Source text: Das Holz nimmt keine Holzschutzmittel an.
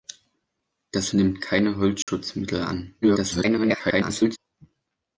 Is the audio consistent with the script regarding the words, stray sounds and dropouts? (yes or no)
no